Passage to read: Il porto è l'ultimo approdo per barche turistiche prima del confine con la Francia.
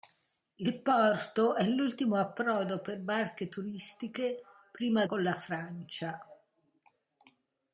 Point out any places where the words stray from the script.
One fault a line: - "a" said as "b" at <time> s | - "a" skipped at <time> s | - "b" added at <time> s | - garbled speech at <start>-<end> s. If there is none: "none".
- "del confine" skipped at 5.0 s